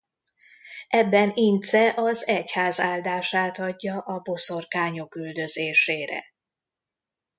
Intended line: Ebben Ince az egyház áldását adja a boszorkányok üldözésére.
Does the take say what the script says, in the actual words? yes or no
yes